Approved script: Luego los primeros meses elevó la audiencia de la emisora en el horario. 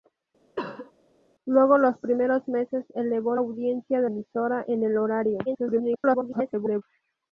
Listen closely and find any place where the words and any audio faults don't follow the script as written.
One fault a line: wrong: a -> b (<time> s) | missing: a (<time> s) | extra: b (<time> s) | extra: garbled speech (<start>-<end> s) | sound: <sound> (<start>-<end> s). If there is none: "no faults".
sound: cough (0.6-0.9 s)
missing: la (3.3 s)
missing: la (4.1 s)
extra: garbled speech (5.5-6.8 s)